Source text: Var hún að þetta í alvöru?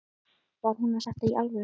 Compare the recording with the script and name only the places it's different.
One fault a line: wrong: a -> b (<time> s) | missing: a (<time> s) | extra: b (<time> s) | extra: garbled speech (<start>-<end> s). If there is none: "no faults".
no faults